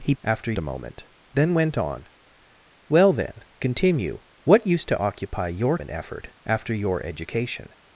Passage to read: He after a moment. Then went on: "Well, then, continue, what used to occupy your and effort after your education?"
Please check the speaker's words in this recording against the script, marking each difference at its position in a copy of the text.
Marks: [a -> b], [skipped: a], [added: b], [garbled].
He after a moment. Then went on: "Well, then, continue, what used to occupy your and effort after your education?"